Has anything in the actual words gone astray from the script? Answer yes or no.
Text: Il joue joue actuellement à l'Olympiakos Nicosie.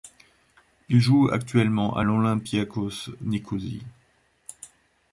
yes